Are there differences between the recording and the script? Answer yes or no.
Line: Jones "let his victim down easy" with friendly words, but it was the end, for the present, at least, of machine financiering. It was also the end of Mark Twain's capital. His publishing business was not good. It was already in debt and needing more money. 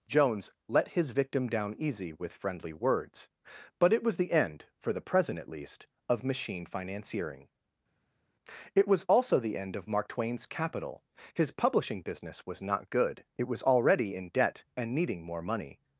no